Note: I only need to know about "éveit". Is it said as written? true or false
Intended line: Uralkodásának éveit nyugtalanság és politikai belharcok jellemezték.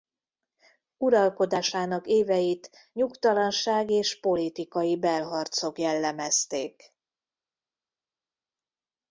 true